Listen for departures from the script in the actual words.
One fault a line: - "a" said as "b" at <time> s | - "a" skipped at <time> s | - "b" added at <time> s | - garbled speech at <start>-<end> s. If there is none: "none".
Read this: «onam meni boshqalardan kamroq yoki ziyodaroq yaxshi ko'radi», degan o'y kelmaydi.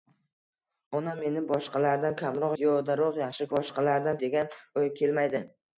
- "yoki" skipped at 2.5 s
- "ko'radi" said as "boshqalardan" at 3.5 s